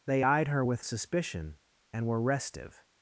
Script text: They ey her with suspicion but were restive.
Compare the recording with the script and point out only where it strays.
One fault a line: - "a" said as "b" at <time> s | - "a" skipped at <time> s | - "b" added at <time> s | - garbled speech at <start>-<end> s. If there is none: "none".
- "ey" said as "eyed" at 0.2 s
- "but" said as "and" at 1.9 s